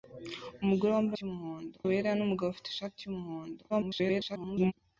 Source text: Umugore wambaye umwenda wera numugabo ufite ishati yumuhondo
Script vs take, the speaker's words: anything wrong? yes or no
yes